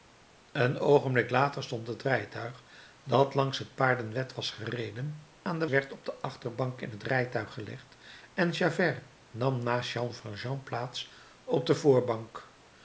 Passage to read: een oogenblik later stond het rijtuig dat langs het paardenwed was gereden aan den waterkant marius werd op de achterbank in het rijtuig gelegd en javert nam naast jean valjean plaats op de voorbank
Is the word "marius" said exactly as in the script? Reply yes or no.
no